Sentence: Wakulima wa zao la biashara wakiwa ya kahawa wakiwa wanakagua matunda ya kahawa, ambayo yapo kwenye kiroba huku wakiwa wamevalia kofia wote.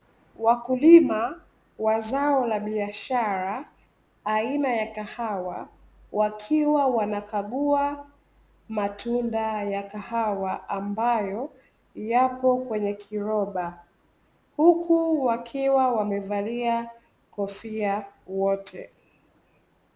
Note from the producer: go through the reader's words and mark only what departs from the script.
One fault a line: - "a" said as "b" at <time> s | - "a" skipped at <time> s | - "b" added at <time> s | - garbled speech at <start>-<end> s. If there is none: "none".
- "wakiwa" said as "aina" at 4.2 s